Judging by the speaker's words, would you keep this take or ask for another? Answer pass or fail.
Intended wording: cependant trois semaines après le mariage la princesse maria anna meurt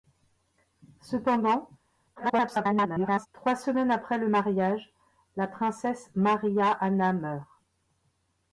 fail